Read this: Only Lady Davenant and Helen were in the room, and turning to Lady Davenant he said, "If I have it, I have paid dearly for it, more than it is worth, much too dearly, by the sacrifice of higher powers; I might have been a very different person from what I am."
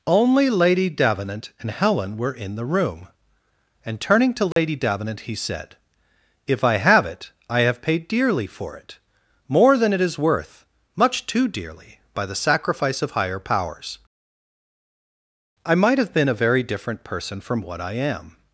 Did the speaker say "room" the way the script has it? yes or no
yes